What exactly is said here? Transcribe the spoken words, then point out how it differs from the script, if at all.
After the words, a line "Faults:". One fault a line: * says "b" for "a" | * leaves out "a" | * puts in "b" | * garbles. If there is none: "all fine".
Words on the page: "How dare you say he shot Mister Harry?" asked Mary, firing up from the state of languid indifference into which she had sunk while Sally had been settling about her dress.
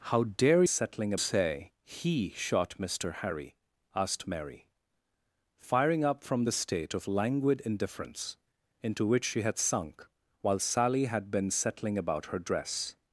"How dare settling say he shot Mister Harry?" asked Mary, firing up from the state of languid indifference into which she had sunk while Sally had been settling about her dress.
Faults:
* says "settling" for "you"